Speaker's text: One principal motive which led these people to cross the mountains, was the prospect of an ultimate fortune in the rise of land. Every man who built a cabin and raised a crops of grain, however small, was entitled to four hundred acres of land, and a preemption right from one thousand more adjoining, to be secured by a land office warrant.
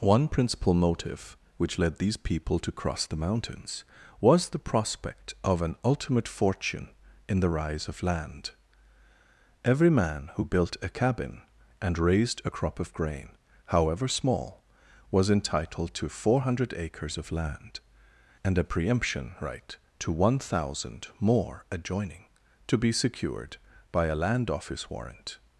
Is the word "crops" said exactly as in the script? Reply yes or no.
no